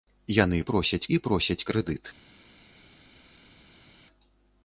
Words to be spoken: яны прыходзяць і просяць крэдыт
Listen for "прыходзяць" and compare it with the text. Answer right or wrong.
wrong